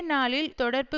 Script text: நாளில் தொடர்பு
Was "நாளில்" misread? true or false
false